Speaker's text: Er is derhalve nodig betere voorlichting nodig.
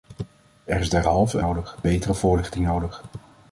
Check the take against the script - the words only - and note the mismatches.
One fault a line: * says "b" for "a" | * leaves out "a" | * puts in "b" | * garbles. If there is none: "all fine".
all fine